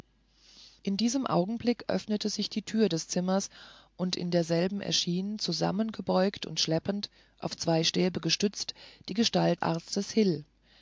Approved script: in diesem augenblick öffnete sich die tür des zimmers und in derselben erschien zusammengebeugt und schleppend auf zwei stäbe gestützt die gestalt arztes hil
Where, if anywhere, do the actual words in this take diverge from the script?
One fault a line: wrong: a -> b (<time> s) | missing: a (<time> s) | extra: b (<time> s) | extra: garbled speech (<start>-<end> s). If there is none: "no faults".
no faults